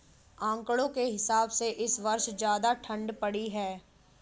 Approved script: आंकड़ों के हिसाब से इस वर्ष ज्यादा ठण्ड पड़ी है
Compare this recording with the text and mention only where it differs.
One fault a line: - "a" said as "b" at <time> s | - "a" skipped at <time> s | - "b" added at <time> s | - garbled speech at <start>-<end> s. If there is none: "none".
none